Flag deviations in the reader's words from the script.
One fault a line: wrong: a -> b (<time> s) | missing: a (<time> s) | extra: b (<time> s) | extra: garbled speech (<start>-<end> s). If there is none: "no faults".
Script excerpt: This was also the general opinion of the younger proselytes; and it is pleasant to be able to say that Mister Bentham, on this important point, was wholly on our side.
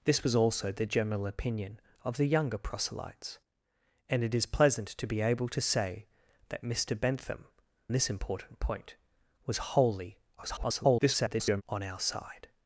missing: on (7.5 s)
extra: garbled speech (10.4-11.6 s)